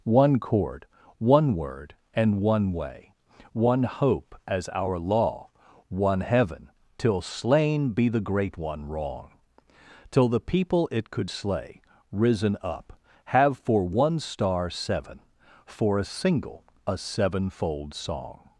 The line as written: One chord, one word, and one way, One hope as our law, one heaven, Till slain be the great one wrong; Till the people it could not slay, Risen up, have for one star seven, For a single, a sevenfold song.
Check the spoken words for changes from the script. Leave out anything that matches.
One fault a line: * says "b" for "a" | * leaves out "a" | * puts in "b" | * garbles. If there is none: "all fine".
* leaves out "not"